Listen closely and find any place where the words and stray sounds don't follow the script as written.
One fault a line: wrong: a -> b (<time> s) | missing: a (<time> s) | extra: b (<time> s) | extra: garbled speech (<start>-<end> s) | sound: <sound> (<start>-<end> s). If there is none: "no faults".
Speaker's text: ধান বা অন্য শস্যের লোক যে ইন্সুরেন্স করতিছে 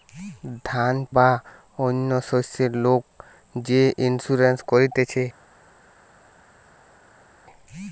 no faults